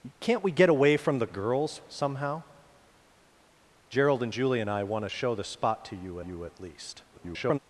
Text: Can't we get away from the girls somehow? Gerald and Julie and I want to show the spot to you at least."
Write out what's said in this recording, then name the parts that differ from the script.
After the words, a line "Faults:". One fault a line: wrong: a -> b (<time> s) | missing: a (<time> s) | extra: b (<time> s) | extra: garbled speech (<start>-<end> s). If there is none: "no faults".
Can't we get away from the girls somehow? Gerald and Julie and I want to show the spot to you you at least." [garbled]
Faults:
extra: you (6.2 s)
extra: garbled speech (7.1-7.6 s)